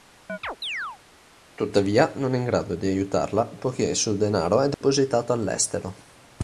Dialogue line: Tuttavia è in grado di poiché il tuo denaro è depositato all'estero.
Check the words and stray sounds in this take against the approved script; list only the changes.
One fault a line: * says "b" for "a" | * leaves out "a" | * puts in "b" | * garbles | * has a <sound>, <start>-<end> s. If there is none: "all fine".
* has a chirp, 0.3-1.0 s
* puts in "non"
* puts in "aiutarla"
* says "suo" for "tuo"
* has a dropout, 4.7-4.8 s